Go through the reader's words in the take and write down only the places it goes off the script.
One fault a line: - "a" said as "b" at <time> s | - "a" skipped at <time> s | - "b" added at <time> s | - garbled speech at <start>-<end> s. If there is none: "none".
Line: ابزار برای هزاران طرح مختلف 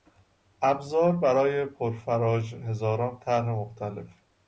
- "پرفراژ" added at 1.6 s